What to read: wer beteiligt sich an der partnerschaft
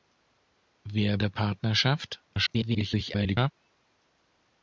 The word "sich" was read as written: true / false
false